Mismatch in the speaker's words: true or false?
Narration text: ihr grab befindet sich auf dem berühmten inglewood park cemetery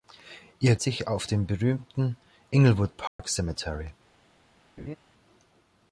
true